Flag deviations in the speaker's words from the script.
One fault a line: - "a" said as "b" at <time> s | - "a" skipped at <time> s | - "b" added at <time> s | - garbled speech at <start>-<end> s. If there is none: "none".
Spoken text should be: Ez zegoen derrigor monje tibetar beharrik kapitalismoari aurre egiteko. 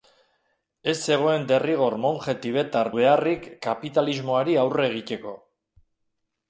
none